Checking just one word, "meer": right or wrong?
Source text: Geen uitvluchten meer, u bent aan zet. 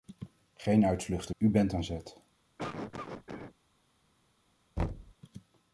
wrong